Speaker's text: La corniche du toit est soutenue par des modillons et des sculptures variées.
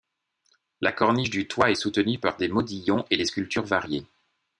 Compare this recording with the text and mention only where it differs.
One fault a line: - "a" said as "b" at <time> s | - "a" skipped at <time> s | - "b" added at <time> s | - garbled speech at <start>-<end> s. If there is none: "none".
none